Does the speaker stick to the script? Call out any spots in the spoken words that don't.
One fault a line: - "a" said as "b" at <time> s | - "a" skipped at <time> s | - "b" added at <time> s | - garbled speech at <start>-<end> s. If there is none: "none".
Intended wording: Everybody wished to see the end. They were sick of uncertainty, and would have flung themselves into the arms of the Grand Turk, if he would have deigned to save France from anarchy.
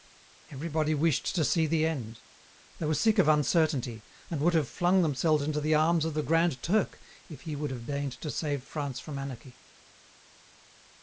none